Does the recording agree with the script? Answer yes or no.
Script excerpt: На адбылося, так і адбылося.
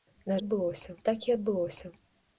yes